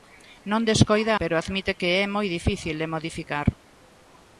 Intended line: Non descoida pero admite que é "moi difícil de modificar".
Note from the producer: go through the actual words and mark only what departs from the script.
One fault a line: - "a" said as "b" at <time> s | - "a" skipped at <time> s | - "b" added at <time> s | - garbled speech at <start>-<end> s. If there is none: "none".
none